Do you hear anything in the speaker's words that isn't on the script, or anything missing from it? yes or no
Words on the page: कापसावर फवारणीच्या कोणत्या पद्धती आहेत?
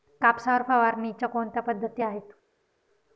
no